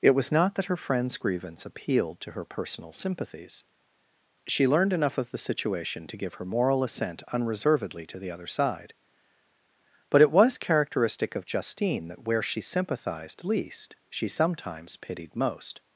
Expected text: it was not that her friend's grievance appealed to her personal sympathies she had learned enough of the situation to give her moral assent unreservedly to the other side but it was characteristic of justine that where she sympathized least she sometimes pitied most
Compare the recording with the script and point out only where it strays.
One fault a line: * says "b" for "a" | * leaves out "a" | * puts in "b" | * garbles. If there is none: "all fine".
* leaves out "had"